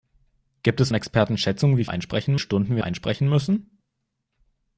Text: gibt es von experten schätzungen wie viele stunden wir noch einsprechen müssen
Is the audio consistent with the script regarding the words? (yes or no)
no